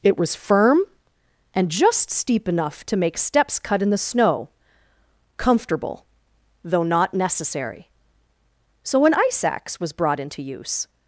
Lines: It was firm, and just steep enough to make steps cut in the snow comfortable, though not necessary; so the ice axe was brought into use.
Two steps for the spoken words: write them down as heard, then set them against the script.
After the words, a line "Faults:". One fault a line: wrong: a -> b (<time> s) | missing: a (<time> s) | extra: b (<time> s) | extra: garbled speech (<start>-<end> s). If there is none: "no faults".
It was firm, and just steep enough to make steps cut in the snow comfortable, though not necessary; so an ice axe was brought into use.
Faults:
wrong: the -> an (9.1 s)